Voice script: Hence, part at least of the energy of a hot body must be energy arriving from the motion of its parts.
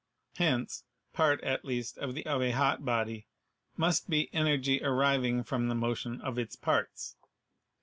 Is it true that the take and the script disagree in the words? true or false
true